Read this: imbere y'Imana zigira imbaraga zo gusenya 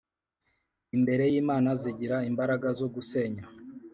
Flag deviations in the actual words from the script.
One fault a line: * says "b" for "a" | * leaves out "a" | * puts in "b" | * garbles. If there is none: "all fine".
all fine